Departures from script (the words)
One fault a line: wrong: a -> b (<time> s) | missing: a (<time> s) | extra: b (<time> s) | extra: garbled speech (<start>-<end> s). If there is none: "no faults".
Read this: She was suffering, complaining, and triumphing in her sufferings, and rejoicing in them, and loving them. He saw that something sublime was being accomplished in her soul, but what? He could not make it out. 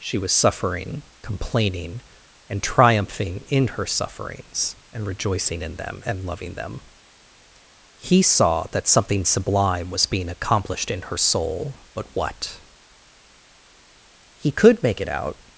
missing: not (14.8 s)